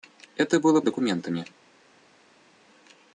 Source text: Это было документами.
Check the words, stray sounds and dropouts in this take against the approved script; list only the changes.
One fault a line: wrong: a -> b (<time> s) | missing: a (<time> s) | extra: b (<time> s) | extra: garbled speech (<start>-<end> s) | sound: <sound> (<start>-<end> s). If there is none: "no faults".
no faults